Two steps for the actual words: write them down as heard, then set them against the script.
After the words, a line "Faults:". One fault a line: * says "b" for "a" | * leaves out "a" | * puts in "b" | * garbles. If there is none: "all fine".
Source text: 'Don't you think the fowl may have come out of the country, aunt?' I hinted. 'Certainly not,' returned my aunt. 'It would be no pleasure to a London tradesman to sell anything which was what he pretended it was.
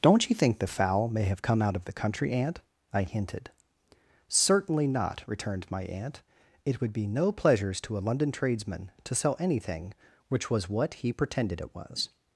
'Don't you think the fowl may have come out of the country, aunt?' I hinted. 'Certainly not,' returned my aunt. 'It would be no pleasures to a London tradesman to sell anything which was what he pretended it was.
Faults:
* says "pleasures" for "pleasure"